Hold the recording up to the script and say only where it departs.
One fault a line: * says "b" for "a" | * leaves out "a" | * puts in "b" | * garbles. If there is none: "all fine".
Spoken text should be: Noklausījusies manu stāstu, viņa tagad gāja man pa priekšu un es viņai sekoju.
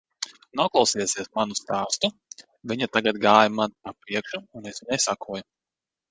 all fine